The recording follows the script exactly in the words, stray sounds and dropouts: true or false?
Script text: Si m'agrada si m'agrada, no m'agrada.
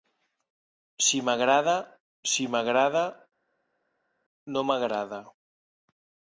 true